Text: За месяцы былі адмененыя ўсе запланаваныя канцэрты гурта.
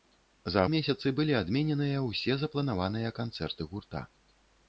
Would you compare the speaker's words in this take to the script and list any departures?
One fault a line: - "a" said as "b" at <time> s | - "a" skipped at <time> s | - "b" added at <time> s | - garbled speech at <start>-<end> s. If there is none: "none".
none